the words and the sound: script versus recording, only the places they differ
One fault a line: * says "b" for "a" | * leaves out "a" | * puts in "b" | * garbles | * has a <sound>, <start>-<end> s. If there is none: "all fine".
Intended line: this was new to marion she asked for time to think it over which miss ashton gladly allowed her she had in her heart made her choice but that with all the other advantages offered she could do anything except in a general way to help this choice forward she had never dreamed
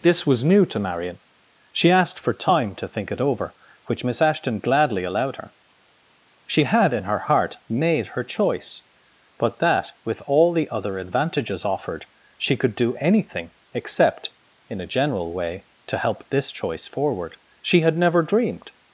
all fine